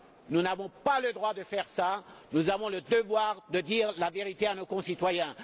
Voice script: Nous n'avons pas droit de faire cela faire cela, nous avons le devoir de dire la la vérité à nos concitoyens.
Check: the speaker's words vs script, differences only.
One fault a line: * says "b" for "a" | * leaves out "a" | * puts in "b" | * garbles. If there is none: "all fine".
* puts in "le"
* leaves out "faire cela"
* leaves out "la"